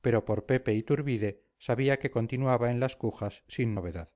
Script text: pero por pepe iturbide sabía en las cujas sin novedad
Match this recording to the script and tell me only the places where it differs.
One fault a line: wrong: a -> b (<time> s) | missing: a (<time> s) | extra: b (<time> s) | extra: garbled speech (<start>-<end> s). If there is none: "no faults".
extra: que continuaba (2.0 s)